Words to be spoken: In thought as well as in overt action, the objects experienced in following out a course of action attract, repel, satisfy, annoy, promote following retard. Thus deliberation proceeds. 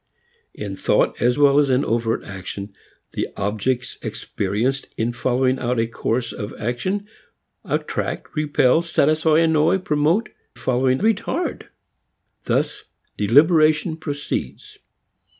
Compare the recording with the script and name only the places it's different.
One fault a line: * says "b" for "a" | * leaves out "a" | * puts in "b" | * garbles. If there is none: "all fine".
all fine